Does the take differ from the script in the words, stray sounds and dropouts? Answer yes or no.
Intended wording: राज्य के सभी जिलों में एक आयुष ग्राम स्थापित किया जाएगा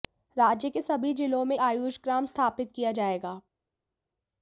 yes